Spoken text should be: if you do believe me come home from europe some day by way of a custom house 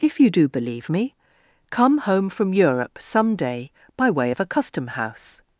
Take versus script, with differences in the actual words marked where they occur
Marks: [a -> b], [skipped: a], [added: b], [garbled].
if you do believe me come home from europe some day by way of a custom house